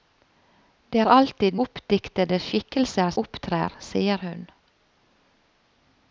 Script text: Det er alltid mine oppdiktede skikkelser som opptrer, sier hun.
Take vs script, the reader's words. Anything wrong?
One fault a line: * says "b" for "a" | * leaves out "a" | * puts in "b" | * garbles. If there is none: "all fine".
* leaves out "mine"
* leaves out "som"